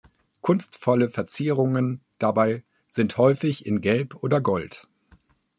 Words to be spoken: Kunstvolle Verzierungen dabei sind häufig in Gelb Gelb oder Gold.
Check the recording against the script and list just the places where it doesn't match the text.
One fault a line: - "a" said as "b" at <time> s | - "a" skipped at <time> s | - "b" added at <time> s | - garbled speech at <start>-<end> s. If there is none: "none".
- "Gelb" skipped at 4.2 s